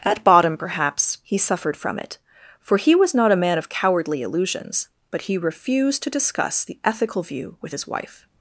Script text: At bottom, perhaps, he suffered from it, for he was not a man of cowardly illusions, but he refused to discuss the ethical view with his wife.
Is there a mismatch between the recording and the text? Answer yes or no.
no